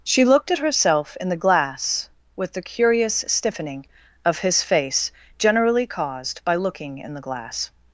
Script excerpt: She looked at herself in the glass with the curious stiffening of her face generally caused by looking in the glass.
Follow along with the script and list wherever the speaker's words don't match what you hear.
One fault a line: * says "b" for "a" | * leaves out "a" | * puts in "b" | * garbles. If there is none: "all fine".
* says "his" for "her"